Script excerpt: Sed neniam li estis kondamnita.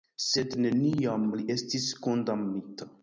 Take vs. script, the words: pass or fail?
pass